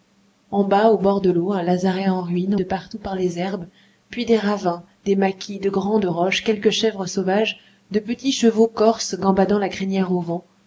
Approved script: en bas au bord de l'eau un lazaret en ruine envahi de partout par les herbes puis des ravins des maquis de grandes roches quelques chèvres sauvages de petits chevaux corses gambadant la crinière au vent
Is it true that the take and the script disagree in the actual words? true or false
true